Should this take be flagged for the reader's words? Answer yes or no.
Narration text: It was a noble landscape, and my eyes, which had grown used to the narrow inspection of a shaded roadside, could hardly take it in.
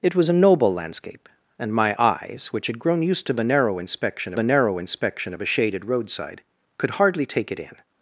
yes